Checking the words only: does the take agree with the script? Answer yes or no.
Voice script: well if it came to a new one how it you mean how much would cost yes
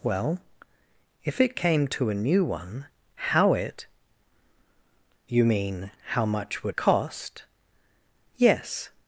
yes